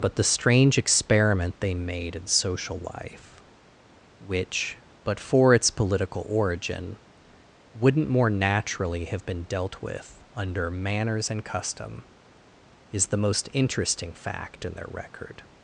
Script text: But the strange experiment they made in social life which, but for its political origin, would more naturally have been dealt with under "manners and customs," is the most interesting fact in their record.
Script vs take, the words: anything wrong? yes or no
yes